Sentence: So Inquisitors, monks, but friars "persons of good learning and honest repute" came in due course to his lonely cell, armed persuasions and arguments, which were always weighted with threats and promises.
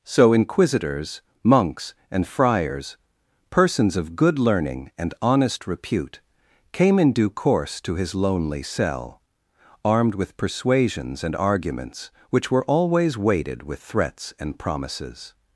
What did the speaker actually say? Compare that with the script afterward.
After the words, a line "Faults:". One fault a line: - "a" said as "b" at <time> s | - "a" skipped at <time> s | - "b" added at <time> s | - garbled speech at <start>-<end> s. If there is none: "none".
So Inquisitors, monks, and friars "persons of good learning and honest repute" came in due course to his lonely cell, armed with persuasions and arguments, which were always weighted with threats and promises.
Faults:
- "but" said as "and" at 2.1 s
- "with" added at 10.2 s